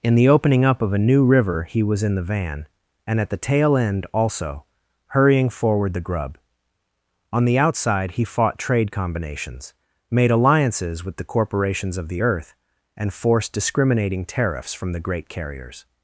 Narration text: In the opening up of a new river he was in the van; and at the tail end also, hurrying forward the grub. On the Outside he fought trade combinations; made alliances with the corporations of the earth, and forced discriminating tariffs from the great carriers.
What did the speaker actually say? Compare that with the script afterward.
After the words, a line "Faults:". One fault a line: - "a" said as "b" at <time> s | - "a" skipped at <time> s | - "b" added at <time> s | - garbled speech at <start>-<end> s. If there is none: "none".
In the opening up of a new river he was in the van; and at the tail end also, hurrying forward the grub. On the Outside he fought trade combinations; made alliances with the corporations of the earth, and forced discriminating tariffs from the great carriers.
Faults:
none